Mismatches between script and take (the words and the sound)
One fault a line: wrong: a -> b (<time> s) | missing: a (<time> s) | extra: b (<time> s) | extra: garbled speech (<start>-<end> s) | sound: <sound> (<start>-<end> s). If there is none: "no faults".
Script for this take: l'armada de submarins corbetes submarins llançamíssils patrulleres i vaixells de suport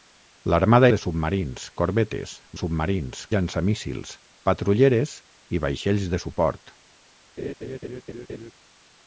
sound: laugh (7.4-8.5 s)